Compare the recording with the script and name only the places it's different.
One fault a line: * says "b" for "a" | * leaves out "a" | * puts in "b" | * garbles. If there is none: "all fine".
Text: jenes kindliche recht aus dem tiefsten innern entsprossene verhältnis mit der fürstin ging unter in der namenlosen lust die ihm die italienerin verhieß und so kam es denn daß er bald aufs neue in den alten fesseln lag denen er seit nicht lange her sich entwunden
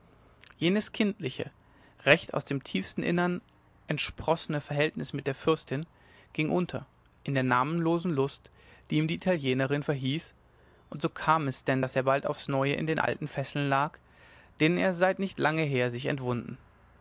all fine